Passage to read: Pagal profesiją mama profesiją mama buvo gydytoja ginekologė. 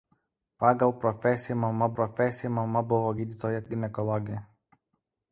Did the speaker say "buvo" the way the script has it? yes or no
yes